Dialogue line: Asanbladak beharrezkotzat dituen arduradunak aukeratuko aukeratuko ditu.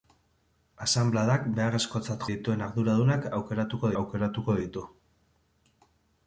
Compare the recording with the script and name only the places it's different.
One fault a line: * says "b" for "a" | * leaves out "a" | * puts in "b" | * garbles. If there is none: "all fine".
all fine